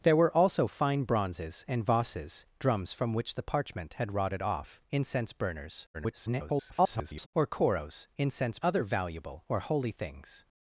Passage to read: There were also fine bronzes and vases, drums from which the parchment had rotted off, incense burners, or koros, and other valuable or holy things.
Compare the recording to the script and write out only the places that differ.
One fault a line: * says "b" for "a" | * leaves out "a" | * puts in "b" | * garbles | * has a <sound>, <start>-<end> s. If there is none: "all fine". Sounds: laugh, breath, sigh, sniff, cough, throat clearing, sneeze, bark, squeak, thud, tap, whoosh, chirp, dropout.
* garbles
* says "incense" for "and"